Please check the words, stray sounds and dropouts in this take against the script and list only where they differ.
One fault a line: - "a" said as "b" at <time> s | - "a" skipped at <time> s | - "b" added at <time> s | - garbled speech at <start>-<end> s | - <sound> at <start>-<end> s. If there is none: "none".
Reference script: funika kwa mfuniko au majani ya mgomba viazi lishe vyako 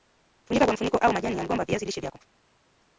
none